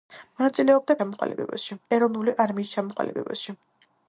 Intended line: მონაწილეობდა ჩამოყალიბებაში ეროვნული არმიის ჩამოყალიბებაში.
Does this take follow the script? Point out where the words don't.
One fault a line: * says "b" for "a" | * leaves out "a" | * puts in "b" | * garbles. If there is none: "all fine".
all fine